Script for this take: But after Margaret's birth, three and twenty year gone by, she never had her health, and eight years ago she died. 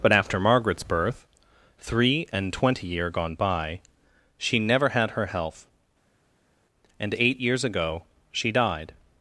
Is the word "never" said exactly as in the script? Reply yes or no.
yes